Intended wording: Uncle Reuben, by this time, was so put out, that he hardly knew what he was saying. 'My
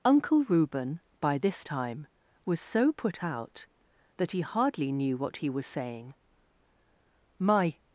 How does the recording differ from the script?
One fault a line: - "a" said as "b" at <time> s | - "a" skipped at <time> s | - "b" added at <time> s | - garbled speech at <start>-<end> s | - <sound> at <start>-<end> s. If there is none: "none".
none